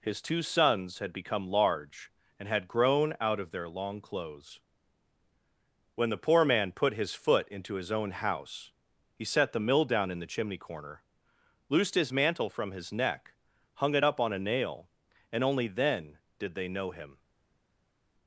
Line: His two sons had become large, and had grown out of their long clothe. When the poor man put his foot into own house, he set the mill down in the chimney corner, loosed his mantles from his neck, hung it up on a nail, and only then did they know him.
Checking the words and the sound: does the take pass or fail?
fail